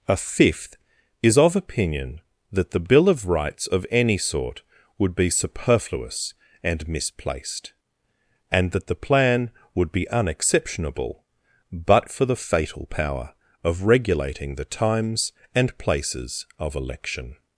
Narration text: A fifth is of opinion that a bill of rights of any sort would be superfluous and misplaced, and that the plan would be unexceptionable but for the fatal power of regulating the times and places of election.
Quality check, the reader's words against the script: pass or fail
fail